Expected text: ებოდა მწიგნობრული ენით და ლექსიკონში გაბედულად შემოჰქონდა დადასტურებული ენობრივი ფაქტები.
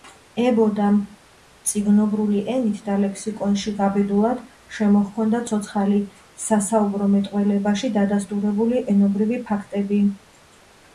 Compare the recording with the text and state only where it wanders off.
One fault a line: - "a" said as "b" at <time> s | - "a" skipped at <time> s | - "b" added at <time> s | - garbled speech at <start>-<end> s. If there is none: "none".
- "ცოცხალი სასაუბრო მეტყველებაში" added at 5.5 s